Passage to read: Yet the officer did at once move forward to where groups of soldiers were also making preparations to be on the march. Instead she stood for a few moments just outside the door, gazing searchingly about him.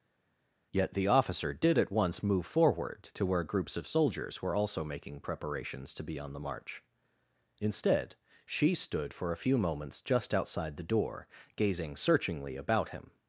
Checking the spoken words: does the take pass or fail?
pass